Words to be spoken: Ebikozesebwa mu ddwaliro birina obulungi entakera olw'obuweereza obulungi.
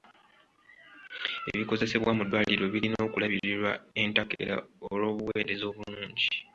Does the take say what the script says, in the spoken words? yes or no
no